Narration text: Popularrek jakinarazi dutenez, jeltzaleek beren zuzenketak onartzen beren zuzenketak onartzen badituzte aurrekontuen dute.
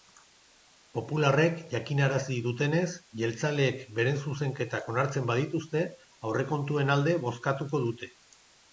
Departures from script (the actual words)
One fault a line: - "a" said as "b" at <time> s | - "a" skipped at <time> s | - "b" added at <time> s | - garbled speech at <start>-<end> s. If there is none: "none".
- "beren zuzenketak onartzen badituzte aurrekontuen" said as "badituzte aurrekontuen alde bozkatuko" at 5.3 s